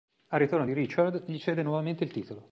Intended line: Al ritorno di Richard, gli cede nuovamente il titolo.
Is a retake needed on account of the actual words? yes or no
no